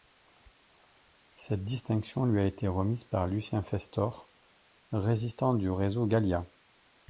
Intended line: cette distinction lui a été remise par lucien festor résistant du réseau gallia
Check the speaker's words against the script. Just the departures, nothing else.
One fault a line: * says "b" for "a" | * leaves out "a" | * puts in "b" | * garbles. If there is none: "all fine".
all fine